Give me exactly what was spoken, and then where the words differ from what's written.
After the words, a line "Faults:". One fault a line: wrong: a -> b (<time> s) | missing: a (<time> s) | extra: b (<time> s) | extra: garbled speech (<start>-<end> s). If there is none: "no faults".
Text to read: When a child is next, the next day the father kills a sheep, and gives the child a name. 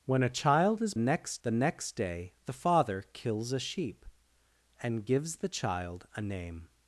When a child is next, the next day the father kills a sheep, and gives the child a name.
Faults:
no faults